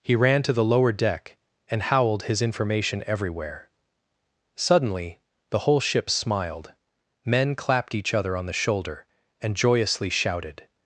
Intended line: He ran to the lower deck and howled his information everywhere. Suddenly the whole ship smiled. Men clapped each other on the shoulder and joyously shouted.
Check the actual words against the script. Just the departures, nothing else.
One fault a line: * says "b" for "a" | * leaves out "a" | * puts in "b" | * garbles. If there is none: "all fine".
all fine